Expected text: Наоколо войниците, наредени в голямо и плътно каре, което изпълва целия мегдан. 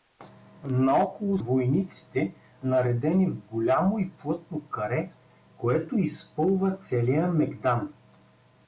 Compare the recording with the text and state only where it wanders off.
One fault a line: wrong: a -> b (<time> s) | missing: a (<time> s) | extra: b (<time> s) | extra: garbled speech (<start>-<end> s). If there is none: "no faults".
no faults